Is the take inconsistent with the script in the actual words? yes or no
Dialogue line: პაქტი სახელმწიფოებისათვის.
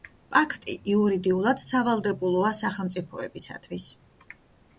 yes